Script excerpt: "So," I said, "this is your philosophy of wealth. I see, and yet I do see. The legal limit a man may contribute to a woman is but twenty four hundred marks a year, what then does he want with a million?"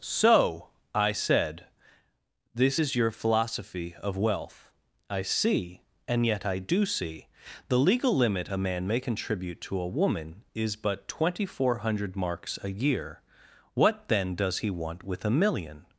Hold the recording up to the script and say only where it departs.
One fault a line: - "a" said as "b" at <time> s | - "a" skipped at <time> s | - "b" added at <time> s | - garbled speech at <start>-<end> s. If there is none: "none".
none